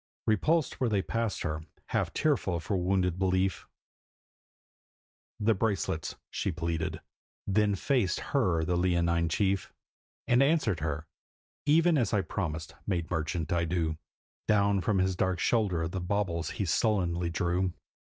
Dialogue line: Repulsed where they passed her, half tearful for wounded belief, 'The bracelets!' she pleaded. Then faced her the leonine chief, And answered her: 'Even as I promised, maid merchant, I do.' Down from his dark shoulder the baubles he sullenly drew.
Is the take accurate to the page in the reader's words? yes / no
yes